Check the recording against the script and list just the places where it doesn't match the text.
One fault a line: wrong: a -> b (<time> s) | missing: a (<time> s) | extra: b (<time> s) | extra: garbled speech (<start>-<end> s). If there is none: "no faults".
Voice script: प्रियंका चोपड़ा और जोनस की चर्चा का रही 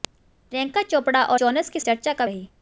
no faults